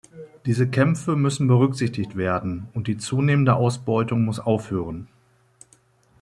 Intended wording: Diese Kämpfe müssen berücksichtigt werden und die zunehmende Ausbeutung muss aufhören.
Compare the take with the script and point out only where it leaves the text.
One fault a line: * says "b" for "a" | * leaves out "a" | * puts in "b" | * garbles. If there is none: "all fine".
all fine